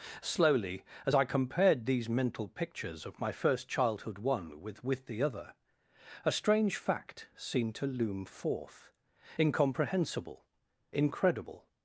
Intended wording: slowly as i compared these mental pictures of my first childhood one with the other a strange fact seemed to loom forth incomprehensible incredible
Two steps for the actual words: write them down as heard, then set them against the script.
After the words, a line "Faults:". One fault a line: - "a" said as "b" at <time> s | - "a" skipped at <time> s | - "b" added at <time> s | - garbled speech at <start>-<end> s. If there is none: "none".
slowly as i compared these mental pictures of my first childhood one with with the other a strange fact seemed to loom forth incomprehensible incredible
Faults:
- "with" added at 4.8 s